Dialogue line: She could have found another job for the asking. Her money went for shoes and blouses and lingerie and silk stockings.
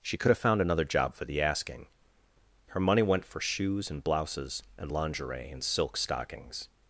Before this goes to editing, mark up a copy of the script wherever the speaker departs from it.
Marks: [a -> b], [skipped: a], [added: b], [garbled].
She could have found another job for the asking. Her money went for shoes and blouses and lingerie and silk stockings.